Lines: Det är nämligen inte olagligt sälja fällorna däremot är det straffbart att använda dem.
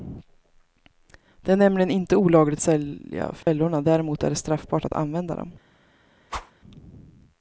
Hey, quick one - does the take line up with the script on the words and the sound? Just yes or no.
no